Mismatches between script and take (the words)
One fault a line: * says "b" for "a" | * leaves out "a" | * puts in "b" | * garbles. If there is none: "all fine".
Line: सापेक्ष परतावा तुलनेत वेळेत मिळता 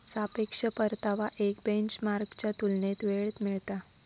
* puts in "एक बेंचमार्कच्या"